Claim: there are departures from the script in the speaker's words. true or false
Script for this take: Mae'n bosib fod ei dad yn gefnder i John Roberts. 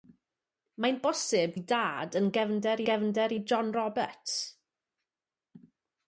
true